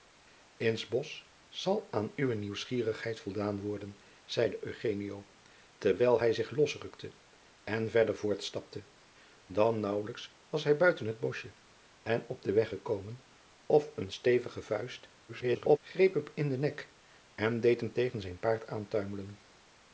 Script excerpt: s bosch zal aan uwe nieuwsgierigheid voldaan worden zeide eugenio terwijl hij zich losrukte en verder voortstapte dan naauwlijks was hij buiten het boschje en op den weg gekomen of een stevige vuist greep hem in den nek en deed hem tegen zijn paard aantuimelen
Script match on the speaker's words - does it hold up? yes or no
no